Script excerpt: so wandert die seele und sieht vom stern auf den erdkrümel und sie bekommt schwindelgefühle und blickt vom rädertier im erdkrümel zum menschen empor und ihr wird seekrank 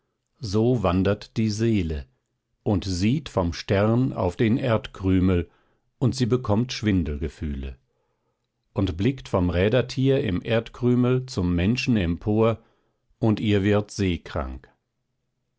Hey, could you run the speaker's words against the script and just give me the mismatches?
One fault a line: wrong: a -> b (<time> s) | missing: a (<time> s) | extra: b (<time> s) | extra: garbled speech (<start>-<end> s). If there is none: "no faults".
no faults